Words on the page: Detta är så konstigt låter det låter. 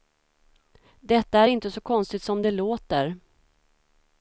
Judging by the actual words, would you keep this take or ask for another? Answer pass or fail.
fail